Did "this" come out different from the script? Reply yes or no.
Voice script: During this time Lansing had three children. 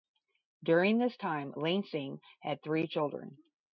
no